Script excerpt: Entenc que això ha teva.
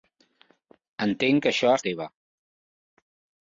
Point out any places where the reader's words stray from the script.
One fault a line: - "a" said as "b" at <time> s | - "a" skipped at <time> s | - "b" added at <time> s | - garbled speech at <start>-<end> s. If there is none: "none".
none